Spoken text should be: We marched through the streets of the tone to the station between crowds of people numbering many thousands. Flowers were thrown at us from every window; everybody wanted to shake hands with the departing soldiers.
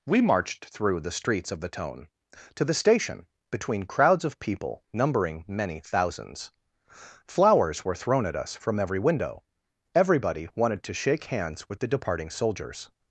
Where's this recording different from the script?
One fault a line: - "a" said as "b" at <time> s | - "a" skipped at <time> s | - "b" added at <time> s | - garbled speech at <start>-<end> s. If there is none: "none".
none